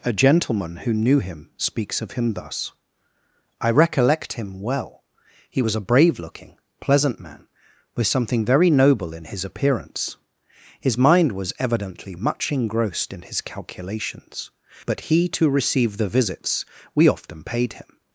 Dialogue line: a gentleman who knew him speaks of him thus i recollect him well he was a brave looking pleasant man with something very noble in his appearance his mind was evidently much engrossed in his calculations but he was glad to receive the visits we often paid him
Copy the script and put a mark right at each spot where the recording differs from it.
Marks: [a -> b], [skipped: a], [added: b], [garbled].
a gentleman who knew him speaks of him thus i recollect him well he was a brave looking pleasant man with something very noble in his appearance his mind was evidently much engrossed in his calculations but he [skipped: was glad] to receive the visits we often paid him